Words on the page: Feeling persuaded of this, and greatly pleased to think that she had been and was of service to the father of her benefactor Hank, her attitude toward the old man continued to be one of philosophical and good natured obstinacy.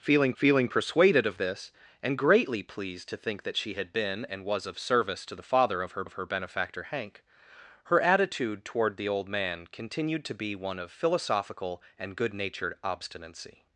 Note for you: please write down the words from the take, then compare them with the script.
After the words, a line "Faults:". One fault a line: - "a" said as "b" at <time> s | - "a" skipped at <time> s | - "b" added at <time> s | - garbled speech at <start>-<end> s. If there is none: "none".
Feeling feeling persuaded of this, and greatly pleased to think that she had been and was of service to the father of her of her benefactor Hank, her attitude toward the old man continued to be one of philosophical and good natured obstinacy.
Faults:
- "feeling" added at 0.3 s
- "of her" added at 6.0 s